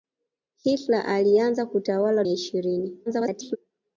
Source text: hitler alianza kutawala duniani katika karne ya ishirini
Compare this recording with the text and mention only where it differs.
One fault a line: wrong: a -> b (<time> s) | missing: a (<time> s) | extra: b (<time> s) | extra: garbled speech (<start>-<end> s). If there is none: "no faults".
missing: duniani katika karne (2.2 s)
extra: garbled speech (3.1-3.6 s)